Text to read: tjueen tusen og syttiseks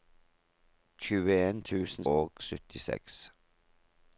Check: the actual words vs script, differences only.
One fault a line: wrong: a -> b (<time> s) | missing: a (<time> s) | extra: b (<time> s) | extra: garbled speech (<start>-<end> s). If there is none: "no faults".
no faults